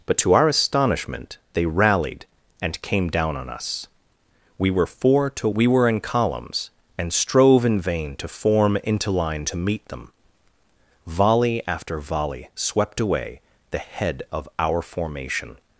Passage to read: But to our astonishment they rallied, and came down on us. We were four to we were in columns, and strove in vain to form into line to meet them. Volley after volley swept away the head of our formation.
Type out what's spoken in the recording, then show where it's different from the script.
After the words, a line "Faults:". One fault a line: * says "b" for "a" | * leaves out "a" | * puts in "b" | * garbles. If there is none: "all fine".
But to our astonishment they rallied, and came down on us. We were four to we were in columns, and strove in vain to form into line to meet them. Volley after volley swept away the head of our formation.
Faults:
all fine